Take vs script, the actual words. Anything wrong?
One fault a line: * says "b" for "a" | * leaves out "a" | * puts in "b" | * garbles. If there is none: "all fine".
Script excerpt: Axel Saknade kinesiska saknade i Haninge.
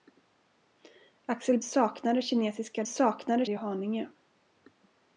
all fine